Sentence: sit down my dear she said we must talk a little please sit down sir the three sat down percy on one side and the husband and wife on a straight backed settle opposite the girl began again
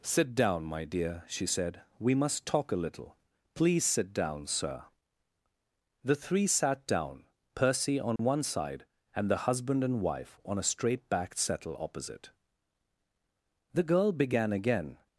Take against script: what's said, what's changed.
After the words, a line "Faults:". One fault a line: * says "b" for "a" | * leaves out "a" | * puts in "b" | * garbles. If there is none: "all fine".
sit down my dear she said we must talk a little please sit down sir the three sat down percy on one side and the husband and wife on a straight backed settle opposite the girl began again
Faults:
all fine